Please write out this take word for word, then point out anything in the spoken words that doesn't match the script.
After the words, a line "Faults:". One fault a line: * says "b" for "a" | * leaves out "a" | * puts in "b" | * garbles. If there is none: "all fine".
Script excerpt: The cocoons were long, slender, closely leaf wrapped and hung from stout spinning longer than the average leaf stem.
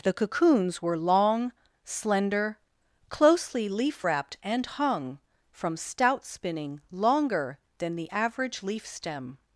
The cocoons were long, slender, closely leaf wrapped and hung from stout spinning longer than the average leaf stem.
Faults:
all fine